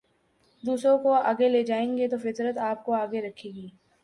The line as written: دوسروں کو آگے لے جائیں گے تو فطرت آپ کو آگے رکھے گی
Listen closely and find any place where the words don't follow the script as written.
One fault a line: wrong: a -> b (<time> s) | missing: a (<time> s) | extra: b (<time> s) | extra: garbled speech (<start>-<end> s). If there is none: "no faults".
no faults